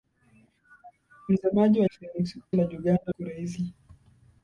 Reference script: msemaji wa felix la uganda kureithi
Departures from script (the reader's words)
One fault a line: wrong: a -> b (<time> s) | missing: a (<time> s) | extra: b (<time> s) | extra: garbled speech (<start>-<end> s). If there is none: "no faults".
no faults